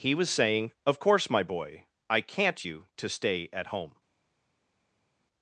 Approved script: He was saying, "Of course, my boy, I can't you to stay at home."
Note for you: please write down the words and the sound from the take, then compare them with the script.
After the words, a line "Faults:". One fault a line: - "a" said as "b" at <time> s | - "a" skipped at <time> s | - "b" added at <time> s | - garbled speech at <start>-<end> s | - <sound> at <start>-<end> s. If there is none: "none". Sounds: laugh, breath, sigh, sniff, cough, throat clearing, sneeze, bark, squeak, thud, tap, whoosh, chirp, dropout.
He was saying, "Of course, my boy, I can't you to stay at home."
Faults:
none